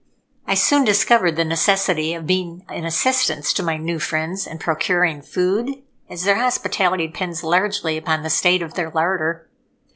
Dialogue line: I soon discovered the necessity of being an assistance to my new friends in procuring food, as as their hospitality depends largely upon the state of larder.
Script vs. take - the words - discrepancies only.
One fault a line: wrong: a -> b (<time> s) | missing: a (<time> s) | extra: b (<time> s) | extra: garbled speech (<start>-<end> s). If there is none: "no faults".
missing: as (6.2 s)
extra: their (8.7 s)